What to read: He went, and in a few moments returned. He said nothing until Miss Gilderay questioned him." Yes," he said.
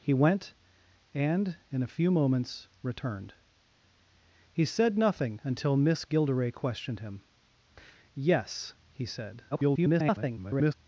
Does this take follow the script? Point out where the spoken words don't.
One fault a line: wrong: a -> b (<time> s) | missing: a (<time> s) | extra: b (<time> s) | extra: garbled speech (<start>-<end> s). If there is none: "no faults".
extra: garbled speech (9.5-10.7 s)